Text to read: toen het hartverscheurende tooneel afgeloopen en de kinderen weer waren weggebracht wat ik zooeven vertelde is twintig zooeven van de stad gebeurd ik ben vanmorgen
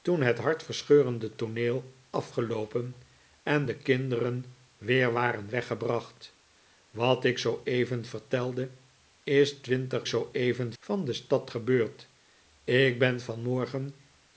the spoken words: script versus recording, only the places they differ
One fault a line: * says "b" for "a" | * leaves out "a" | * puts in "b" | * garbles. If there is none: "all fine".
all fine